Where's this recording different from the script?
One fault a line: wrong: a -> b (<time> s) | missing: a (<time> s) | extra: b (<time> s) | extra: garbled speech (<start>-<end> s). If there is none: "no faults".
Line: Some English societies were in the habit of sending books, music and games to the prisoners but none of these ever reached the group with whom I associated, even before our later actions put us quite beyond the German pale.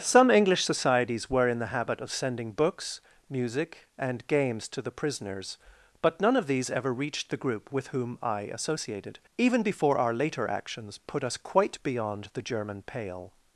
no faults